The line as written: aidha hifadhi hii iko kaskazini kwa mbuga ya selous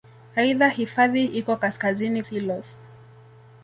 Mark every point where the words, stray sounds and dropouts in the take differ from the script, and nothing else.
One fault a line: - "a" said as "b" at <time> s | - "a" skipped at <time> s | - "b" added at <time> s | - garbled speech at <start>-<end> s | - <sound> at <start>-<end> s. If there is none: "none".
- "hii" skipped at 1.2 s
- "kwa mbuga ya" skipped at 2.2 s